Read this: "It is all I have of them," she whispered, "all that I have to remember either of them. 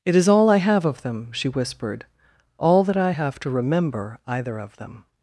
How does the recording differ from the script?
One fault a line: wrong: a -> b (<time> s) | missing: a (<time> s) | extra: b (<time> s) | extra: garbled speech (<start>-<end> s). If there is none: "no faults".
no faults